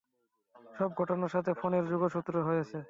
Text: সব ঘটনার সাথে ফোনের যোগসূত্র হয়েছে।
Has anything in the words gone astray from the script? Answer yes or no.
no